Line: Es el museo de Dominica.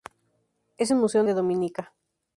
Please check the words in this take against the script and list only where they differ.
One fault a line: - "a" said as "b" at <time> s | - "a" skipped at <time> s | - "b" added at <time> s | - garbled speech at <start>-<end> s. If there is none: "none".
none